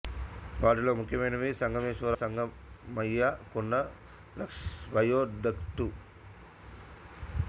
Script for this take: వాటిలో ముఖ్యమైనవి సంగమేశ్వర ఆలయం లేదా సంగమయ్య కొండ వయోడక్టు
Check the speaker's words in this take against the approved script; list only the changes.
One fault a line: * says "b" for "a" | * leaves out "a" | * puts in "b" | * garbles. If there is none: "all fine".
* leaves out "ఆలయం లేదా"